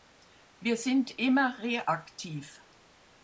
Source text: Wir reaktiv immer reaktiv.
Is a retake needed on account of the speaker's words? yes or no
yes